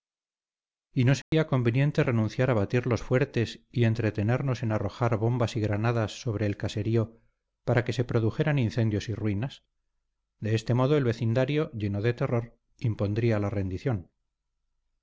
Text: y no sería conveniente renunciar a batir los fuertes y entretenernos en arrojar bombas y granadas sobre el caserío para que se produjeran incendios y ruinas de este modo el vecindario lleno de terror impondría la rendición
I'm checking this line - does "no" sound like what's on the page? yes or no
yes